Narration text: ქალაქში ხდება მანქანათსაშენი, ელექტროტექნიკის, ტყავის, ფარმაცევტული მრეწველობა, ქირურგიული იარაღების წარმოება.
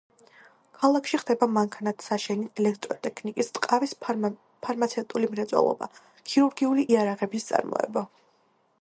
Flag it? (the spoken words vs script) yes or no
no